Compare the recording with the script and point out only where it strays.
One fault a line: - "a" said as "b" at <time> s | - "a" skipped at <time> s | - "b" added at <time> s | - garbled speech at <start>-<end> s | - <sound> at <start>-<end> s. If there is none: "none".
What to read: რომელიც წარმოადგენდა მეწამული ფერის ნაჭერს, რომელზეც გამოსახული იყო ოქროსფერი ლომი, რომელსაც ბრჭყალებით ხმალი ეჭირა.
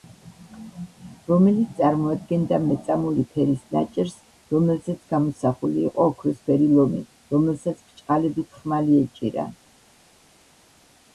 none